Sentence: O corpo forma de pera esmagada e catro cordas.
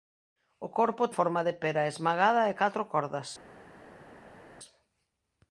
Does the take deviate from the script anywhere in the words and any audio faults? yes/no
no